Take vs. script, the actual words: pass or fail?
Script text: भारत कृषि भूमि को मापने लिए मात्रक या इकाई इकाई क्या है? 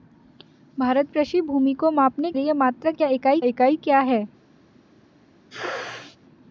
pass